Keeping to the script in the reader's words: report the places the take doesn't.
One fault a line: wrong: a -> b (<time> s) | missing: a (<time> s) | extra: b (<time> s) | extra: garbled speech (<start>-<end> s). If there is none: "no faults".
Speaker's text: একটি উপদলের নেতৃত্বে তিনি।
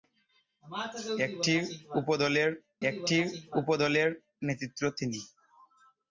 extra: একটি উপদলের (2.9 s)